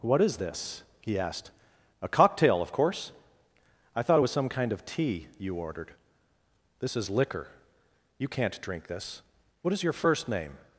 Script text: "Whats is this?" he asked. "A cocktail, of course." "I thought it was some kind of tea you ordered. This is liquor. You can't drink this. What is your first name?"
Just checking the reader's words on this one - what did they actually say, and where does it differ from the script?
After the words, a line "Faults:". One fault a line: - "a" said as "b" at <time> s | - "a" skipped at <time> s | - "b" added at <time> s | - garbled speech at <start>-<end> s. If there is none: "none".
"What is this?" he asked. "A cocktail, of course." "I thought it was some kind of tea you ordered. This is liquor. You can't drink this. What is your first name?"
Faults:
- "Whats" said as "What" at 0.0 s